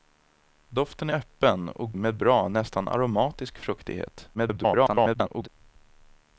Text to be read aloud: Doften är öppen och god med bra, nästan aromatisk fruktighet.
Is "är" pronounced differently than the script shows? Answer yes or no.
yes